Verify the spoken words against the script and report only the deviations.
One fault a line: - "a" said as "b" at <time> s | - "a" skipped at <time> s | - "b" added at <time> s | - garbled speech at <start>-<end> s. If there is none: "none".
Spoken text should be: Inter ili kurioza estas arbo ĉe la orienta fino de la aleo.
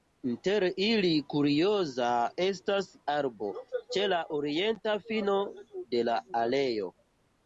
none